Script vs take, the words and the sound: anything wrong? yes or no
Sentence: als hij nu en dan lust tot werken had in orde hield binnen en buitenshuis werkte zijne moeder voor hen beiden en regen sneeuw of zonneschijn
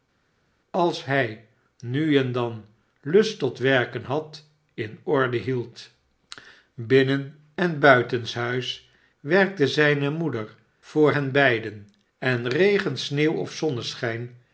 no